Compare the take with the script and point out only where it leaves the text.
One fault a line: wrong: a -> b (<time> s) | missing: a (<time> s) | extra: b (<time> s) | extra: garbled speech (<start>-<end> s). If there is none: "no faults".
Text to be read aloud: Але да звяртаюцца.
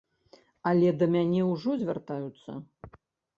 extra: мяне ўжо (1.1 s)